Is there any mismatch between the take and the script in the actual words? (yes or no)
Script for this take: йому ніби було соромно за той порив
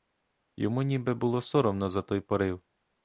no